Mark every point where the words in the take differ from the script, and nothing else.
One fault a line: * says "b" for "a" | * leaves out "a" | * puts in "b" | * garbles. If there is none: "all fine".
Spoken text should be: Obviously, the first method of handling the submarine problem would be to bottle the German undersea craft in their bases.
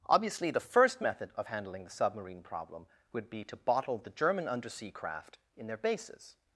all fine